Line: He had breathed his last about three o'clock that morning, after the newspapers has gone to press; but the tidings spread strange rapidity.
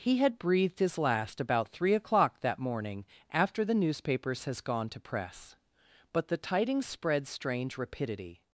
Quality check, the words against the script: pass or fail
pass